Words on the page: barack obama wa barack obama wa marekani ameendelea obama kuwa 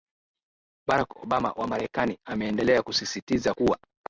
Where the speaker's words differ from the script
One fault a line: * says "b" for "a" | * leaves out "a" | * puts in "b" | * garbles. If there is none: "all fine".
* leaves out "barack obama wa"
* says "kusisitiza" for "obama"